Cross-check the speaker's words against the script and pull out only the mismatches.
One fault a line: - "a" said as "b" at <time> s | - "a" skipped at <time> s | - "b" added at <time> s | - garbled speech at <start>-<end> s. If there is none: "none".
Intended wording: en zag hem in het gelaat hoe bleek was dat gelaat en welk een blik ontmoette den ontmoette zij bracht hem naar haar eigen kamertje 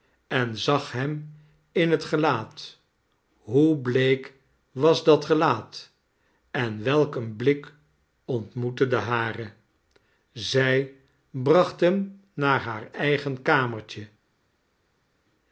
- "ontmoette" said as "haren" at 9.0 s